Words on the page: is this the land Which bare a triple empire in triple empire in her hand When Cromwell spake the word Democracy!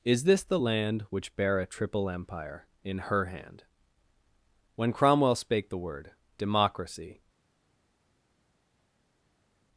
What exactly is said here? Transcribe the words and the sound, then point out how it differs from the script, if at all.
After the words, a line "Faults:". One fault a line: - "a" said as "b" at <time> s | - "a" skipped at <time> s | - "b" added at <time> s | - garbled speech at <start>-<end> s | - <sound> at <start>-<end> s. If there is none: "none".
is this the land Which bare a triple empire in her hand When Cromwell spake the word Democracy!
Faults:
- "triple empire in" skipped at 3.0 s